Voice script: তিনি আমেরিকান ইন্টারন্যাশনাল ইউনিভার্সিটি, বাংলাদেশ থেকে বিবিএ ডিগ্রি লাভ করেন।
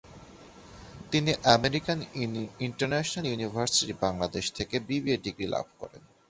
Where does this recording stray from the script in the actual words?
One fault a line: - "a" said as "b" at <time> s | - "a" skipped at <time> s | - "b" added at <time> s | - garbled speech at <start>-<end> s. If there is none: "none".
none